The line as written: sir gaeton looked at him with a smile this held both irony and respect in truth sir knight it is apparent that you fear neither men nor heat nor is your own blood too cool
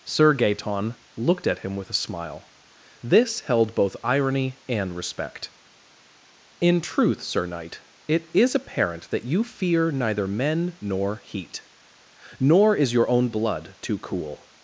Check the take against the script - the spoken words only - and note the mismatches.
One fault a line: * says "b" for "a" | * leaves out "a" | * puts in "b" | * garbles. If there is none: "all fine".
all fine